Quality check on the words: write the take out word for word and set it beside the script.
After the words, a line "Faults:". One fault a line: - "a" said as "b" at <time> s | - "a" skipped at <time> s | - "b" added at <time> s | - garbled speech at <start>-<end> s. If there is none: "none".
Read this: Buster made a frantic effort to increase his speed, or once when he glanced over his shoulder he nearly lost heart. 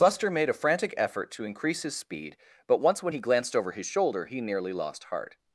Buster made a frantic effort to increase his speed, but once when he glanced over his shoulder he nearly lost heart.
Faults:
- "or" said as "but" at 2.7 s